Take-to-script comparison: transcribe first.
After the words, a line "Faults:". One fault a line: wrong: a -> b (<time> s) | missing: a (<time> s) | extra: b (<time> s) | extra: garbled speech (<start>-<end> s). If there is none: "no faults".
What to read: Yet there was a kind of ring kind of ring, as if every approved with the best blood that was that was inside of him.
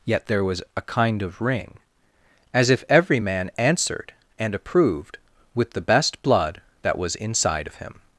Yet there was a kind of ring, as if every man answered and approved with the best blood that was inside of him.
Faults:
wrong: kind of ring as if every -> as if every man answered and (2.5 s)
missing: that was (7.2 s)